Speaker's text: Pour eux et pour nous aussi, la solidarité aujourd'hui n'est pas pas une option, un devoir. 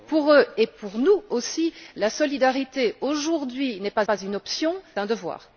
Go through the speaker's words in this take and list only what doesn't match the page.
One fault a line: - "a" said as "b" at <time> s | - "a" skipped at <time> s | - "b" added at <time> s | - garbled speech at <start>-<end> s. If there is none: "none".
none